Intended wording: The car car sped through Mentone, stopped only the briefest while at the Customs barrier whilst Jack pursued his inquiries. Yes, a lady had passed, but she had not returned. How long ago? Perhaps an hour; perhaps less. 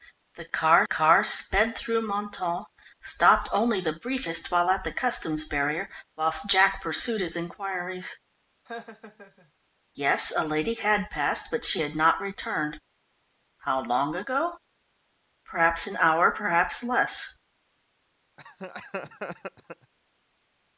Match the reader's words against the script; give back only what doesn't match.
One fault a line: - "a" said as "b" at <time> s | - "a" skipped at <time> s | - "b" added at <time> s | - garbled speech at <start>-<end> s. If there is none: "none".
none